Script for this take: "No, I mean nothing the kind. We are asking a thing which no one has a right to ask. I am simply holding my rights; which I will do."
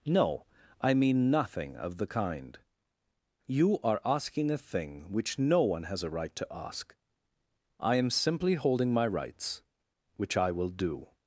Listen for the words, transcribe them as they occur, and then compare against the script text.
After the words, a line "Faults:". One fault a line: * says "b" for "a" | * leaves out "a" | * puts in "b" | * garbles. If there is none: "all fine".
"No, I mean nothing of the kind. You are asking a thing which no one has a right to ask. I am simply holding my rights; which I will do."
Faults:
* puts in "of"
* says "You" for "We"